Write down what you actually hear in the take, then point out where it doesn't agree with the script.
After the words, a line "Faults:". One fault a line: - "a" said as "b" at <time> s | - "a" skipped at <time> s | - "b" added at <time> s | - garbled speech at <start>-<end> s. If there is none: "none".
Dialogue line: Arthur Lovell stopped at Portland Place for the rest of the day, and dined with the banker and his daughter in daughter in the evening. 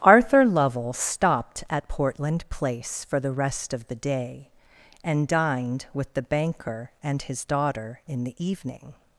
Arthur Lovell stopped at Portland Place for the rest of the day, and dined with the banker and his daughter in the evening.
Faults:
- "daughter in" skipped at 8.2 s